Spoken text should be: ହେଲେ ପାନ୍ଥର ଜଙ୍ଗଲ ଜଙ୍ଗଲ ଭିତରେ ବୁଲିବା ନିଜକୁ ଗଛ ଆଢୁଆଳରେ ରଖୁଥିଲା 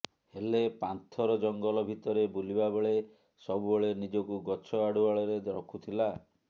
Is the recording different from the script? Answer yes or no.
yes